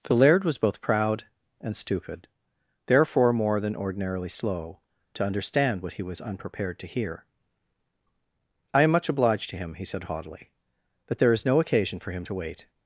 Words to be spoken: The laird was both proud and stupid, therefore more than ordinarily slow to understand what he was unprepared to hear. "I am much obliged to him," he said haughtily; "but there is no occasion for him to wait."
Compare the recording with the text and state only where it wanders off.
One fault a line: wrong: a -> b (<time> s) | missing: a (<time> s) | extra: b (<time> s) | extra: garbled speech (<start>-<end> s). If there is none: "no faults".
no faults